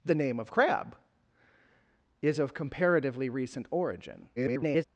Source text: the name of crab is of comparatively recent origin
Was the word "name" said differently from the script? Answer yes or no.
no